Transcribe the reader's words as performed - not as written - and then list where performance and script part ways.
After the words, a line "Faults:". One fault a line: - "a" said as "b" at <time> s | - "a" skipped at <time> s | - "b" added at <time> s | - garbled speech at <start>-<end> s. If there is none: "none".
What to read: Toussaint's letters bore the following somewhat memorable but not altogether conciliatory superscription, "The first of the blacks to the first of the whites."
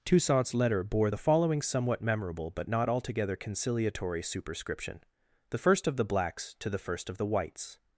Toussaint's letter bore the following somewhat memorable but not altogether conciliatory superscription, "The first of the blacks to the first of the whites."
Faults:
- "letters" said as "letter" at 0.5 s